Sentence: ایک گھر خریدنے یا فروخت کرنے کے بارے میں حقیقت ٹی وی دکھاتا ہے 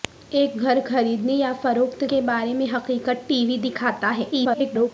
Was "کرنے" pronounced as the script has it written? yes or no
no